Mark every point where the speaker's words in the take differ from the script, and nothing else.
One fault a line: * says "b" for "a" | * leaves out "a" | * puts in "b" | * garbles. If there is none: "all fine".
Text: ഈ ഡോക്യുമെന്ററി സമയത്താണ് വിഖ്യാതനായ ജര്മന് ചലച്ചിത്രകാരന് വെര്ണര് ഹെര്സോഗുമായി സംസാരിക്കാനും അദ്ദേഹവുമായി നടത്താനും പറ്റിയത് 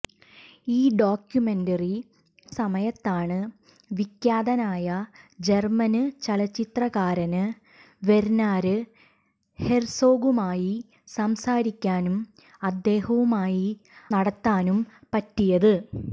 all fine